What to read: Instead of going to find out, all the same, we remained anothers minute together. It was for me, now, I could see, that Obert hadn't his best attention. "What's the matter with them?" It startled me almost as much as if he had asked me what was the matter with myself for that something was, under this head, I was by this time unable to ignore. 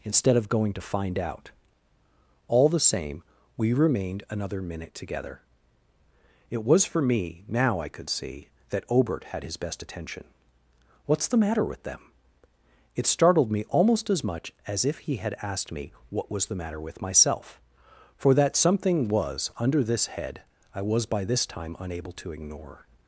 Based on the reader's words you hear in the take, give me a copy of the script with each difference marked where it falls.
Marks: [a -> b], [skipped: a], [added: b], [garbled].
Instead of going to find out, all the same, we remained [anothers -> another] minute together. It was for me, now, I could see, that Obert [hadn't -> had] his best attention. "What's the matter with them?" It startled me almost as much as if he had asked me what was the matter with myself for that something was, under this head, I was by this time unable to ignore.